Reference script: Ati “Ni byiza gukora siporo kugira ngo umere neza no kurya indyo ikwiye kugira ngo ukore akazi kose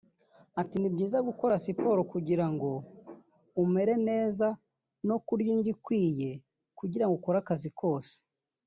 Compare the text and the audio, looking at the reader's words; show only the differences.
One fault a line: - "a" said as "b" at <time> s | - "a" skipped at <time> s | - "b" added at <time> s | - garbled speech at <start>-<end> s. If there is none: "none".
none